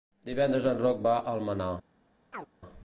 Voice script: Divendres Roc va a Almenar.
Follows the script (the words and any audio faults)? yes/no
no